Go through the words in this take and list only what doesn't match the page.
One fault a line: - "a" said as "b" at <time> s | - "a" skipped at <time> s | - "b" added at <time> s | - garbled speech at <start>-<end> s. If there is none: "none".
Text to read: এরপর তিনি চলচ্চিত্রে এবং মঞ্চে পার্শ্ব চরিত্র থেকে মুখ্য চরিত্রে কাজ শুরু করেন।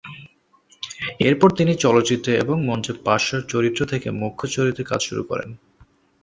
none